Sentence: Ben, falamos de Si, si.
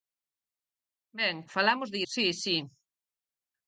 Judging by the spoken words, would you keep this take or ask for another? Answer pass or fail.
pass